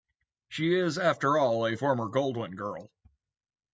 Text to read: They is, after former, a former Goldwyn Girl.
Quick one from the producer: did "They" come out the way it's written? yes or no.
no